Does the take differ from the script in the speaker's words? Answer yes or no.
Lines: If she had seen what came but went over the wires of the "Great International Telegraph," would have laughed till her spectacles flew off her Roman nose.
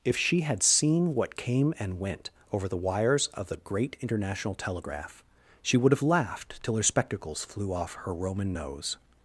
yes